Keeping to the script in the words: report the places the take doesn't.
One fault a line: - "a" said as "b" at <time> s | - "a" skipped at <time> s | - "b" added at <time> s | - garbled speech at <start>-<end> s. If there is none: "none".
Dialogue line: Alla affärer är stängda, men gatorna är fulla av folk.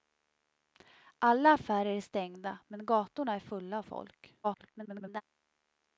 - garbled speech at 4.4-5.2 s